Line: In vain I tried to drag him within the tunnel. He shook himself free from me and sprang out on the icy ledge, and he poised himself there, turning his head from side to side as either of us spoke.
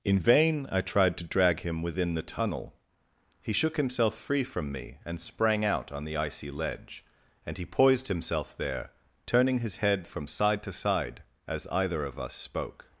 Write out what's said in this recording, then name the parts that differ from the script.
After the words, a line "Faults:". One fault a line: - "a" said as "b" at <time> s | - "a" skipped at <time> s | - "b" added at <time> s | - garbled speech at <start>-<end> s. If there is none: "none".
In vain I tried to drag him within the tunnel. He shook himself free from me and sprang out on the icy ledge, and he poised himself there, turning his head from side to side as either of us spoke.
Faults:
none